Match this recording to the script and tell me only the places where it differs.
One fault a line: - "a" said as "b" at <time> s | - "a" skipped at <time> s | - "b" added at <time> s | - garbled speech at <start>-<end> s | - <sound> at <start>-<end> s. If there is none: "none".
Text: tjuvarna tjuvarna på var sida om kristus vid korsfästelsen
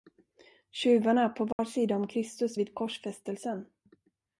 - "tjuvarna" skipped at 1.3 s
- dropout at 1.5-1.6 s